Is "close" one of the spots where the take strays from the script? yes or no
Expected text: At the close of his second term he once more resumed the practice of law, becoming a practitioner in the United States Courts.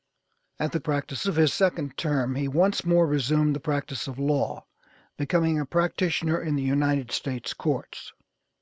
yes